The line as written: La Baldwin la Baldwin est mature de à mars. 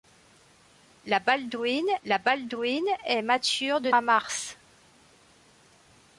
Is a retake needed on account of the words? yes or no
no